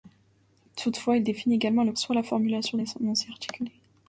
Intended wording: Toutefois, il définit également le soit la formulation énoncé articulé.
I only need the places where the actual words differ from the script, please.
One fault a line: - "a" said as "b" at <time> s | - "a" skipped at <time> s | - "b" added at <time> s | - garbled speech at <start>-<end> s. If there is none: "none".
none